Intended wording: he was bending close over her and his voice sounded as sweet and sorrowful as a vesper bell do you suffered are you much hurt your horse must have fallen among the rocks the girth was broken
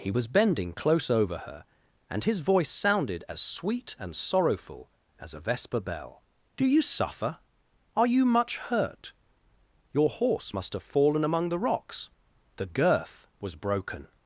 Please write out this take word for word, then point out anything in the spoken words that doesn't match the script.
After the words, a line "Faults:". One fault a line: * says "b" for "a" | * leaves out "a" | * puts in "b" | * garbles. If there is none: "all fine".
he was bending close over her and his voice sounded as sweet and sorrowful as a vesper bell do you suffer are you much hurt your horse must have fallen among the rocks the girth was broken
Faults:
* says "suffer" for "suffered"